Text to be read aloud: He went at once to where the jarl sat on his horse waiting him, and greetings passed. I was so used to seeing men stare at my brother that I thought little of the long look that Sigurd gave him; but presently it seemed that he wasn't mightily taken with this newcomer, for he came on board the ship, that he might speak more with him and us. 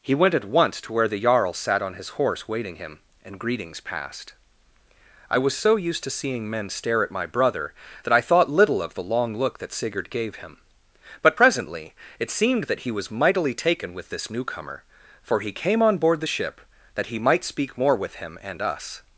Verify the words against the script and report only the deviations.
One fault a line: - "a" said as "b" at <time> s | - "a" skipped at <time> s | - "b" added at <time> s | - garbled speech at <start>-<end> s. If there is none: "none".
- "wasn't" said as "was" at 12.9 s